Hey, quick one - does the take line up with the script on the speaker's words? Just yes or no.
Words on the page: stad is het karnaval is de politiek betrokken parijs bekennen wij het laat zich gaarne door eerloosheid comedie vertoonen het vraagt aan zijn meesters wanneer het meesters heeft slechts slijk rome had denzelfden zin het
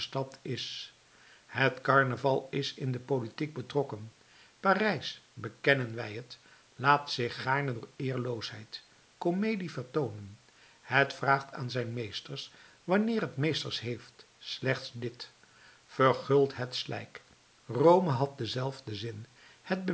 no